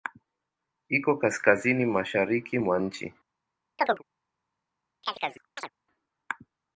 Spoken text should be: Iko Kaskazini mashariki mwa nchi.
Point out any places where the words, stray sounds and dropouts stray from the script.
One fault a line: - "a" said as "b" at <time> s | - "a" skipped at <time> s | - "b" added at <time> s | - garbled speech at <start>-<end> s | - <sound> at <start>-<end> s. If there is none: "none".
- chirp at 3.8-4.0 s
- chirp at 5.0-5.7 s